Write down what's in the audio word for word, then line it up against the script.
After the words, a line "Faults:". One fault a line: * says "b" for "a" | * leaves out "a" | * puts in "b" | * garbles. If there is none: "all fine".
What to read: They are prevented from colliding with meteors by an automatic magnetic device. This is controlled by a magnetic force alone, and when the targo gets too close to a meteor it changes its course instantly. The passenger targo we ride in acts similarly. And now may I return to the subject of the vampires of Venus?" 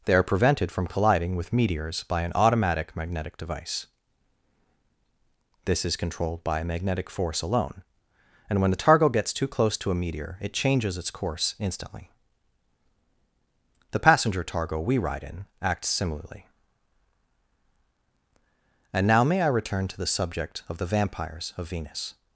They are prevented from colliding with meteors by an automatic magnetic device. This is controlled by a magnetic force alone, and when the targo gets too close to a meteor it changes its course instantly. The passenger targo we ride in acts similarly. And now may I return to the subject of the vampires of Venus?"
Faults:
all fine